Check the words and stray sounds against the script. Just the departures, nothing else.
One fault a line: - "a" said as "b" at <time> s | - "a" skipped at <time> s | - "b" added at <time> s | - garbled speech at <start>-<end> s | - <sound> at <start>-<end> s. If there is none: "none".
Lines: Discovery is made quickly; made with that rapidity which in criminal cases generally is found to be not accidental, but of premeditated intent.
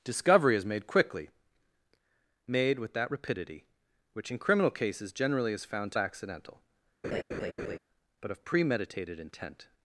- "be not" skipped at 6.0 s
- laugh at 7.0-7.8 s